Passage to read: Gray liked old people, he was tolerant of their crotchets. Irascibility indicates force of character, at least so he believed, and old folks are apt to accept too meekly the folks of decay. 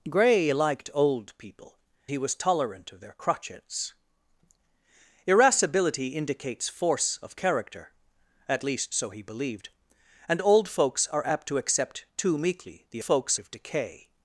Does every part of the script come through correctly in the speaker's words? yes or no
yes